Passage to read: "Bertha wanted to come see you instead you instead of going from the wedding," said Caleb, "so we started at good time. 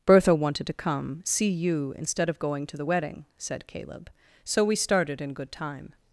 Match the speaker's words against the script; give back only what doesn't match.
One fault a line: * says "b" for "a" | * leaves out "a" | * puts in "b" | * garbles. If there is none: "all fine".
* leaves out "you instead"
* says "to" for "from"
* says "in" for "at"